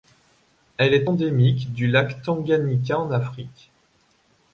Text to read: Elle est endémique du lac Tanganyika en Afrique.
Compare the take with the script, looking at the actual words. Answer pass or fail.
pass